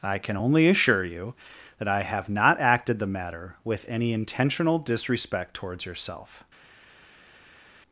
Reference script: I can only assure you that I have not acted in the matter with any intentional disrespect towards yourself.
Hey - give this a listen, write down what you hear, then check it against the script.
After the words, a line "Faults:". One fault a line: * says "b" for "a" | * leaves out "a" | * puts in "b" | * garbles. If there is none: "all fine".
I can only assure you that I have not acted the matter with any intentional disrespect towards yourself.
Faults:
* leaves out "in"